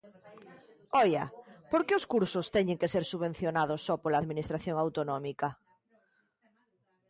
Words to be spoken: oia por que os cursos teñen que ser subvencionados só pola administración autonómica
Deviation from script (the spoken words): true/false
false